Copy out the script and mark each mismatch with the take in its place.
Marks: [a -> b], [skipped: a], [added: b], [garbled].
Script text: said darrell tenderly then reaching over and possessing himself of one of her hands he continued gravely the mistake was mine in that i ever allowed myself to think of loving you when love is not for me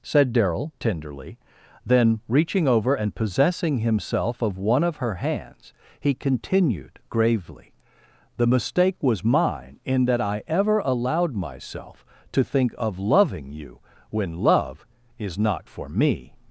said darrell tenderly then reaching over and possessing himself of one of her hands he continued gravely the mistake was mine in that i ever allowed myself to think of loving you when love is not for me